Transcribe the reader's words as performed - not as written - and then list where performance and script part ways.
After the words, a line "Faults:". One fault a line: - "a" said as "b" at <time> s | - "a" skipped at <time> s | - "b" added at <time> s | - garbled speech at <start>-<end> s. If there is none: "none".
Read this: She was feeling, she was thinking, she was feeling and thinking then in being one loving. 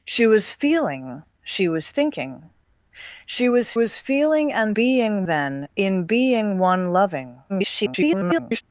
She was feeling, she was thinking, she was was feeling and being then in being one loving. [garbled]
Faults:
- "was" added at 3.7 s
- "thinking" said as "being" at 4.7 s
- garbled speech at 7.5-8.6 s